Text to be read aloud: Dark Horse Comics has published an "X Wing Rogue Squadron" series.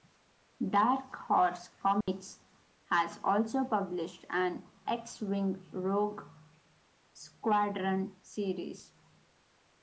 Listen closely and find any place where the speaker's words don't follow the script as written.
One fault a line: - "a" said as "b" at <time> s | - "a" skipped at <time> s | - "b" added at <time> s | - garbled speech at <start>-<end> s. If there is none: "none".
- "also" added at 3.2 s